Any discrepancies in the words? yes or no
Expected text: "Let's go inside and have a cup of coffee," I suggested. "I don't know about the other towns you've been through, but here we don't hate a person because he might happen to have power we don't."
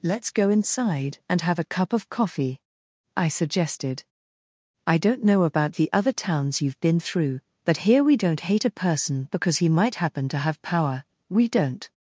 no